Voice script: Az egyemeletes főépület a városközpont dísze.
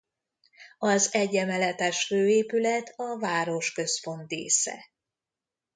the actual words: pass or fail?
pass